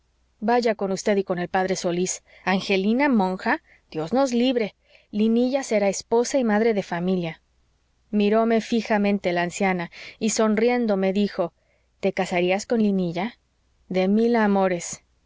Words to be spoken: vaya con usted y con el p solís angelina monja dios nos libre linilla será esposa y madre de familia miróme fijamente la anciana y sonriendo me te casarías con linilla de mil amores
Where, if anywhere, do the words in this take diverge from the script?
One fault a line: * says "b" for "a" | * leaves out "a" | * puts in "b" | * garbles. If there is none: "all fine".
* puts in "dijo"